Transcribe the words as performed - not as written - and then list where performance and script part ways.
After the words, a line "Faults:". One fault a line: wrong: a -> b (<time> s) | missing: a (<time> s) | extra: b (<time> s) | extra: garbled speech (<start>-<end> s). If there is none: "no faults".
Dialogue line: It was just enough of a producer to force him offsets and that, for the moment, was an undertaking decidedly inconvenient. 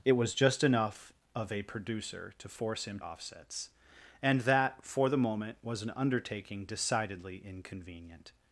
It was just enough of a producer to force him offsets and that, for the moment, was an undertaking decidedly inconvenient.
Faults:
no faults